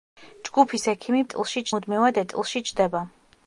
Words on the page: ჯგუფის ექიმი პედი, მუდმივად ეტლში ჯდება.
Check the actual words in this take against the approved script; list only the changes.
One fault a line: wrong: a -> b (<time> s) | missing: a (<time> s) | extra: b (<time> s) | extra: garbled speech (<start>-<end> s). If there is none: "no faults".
wrong: პედი -> ეტლში (1.3 s)